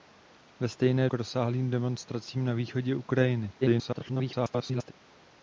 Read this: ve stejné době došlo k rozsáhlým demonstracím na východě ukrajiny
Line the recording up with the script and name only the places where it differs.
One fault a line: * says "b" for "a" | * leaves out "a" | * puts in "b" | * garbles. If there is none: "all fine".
* leaves out "době došlo"
* garbles